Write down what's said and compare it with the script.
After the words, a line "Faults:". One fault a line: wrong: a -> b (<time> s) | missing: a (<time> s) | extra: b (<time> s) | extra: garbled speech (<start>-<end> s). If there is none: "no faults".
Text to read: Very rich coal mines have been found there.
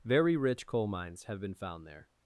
Very rich coal mines have been found there.
Faults:
no faults